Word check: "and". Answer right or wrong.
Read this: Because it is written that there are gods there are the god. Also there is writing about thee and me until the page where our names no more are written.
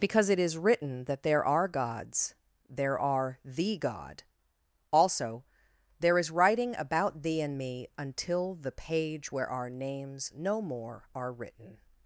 right